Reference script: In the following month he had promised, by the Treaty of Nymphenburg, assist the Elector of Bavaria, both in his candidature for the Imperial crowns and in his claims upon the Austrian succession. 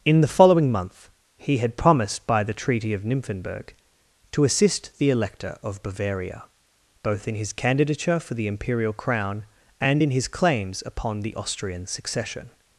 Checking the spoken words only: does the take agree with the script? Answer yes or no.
no